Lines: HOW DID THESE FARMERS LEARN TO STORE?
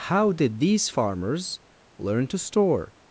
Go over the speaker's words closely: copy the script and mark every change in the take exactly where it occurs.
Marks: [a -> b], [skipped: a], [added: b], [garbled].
HOW DID THESE FARMERS LEARN TO STORE?